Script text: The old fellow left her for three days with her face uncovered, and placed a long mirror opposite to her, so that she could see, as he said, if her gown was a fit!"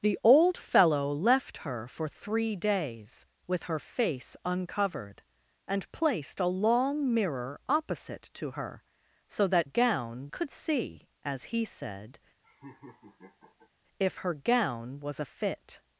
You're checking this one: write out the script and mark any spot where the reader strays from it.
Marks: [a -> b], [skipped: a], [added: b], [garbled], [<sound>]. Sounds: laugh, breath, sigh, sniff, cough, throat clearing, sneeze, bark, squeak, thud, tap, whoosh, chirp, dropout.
The old fellow left her for three days with her face uncovered, and placed a long mirror opposite to her, so that [she -> gown] could see, as he said, [laugh] if her gown was a fit!"